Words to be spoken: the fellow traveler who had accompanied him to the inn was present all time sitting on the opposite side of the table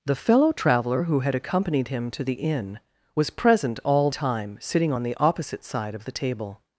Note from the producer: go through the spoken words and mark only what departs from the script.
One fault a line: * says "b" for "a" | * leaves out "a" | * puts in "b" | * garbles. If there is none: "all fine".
all fine